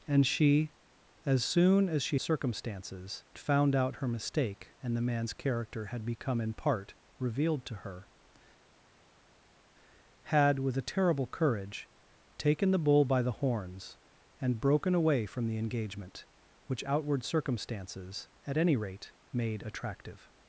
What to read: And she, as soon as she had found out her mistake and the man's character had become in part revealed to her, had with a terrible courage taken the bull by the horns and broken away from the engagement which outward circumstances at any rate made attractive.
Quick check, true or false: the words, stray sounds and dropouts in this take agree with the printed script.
false